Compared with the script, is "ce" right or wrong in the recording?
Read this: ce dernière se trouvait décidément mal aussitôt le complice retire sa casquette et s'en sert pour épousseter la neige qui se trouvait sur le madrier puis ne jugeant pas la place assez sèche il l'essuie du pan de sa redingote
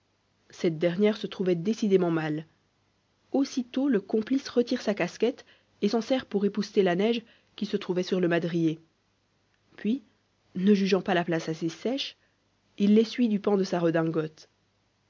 wrong